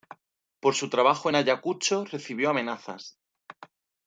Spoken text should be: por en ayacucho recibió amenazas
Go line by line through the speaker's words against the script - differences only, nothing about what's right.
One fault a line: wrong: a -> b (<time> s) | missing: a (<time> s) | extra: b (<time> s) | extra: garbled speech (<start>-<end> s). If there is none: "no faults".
extra: su trabajo (0.7 s)